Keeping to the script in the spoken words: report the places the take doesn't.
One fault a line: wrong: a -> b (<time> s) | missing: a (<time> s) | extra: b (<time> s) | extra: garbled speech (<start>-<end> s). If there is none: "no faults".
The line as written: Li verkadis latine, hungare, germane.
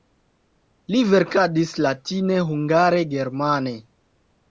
no faults